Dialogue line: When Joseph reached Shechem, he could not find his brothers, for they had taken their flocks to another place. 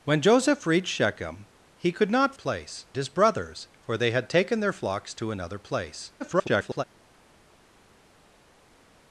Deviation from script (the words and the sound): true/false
true